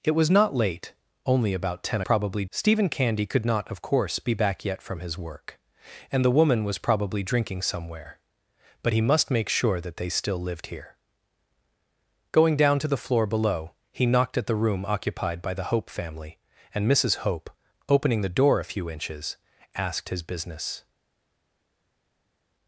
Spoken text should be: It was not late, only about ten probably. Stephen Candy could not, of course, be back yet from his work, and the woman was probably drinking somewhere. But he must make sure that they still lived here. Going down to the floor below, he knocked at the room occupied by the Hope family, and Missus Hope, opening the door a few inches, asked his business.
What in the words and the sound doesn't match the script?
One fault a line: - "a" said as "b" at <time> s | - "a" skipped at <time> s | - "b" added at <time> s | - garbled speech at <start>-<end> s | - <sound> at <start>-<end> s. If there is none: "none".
none